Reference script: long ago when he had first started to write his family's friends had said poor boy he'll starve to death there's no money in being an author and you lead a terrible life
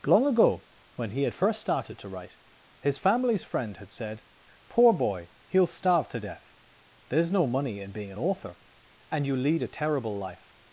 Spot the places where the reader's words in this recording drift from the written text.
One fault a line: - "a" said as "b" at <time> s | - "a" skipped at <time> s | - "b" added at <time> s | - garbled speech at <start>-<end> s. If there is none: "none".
- "friends" said as "friend" at 3.4 s